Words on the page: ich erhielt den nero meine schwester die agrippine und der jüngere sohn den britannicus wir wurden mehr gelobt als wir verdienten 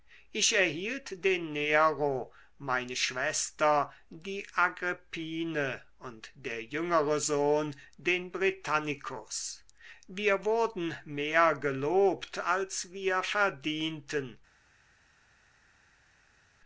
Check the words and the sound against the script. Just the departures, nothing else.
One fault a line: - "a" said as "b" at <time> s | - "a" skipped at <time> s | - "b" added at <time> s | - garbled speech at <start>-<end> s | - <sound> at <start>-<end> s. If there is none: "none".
none